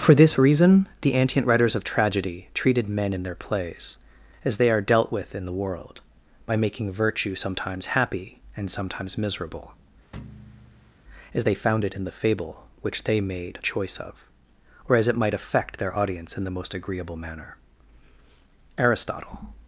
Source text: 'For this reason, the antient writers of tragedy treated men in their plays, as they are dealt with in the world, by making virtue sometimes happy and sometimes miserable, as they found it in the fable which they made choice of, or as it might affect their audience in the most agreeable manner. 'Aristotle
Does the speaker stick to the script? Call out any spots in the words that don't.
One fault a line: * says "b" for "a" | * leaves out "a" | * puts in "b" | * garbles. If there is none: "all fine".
all fine